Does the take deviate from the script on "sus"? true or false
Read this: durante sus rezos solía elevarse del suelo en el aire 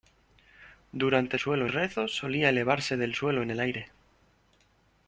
true